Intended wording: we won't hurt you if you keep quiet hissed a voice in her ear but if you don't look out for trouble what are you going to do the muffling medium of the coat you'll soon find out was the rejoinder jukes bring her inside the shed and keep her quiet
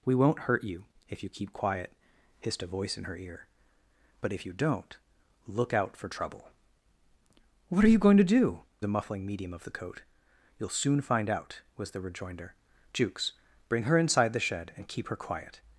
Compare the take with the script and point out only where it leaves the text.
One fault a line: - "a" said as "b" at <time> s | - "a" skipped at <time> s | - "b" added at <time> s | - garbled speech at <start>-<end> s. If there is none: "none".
none